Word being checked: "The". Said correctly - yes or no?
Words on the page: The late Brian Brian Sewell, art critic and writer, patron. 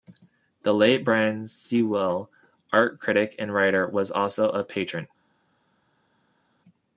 yes